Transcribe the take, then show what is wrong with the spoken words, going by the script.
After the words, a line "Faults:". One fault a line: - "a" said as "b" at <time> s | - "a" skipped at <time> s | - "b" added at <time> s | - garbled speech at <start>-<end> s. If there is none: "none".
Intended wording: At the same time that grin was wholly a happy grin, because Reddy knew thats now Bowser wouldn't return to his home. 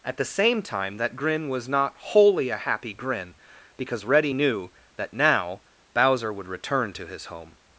At the same time that grin was not wholly a happy grin, because Reddy knew that now Bowser would return to his home.
Faults:
- "not" added at 1.7 s
- "thats" said as "that" at 5.0 s
- "wouldn't" said as "would" at 6.3 s